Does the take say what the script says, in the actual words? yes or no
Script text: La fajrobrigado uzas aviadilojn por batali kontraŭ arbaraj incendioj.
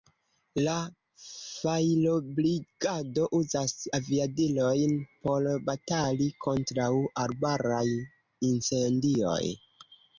yes